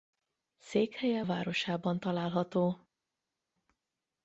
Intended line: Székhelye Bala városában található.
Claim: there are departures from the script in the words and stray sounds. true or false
true